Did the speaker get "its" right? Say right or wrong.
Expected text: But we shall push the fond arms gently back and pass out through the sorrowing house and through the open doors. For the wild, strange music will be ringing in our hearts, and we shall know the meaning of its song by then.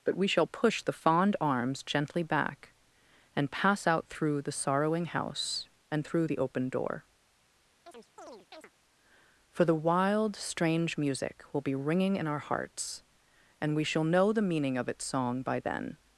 right